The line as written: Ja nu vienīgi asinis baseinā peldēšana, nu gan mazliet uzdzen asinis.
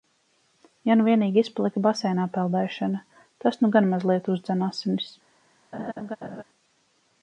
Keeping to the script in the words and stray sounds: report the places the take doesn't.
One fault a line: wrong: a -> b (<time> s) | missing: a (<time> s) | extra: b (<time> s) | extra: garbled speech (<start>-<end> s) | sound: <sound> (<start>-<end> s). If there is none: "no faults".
wrong: asinis -> izpalika (1.5 s)
extra: tas (3.5 s)
sound: laugh (5.7-6.4 s)